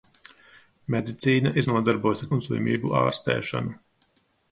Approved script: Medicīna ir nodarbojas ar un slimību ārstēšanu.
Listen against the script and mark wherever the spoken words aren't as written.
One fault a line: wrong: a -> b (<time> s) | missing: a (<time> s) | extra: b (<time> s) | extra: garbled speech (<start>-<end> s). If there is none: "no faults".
no faults